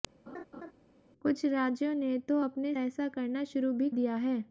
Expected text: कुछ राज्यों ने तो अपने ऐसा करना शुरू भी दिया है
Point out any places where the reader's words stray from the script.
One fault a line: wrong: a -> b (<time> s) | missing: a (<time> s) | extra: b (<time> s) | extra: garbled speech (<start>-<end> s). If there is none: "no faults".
no faults